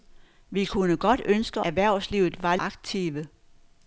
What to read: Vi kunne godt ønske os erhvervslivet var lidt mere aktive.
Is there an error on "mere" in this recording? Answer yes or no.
yes